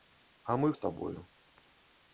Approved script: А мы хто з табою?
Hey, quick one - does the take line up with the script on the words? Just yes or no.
no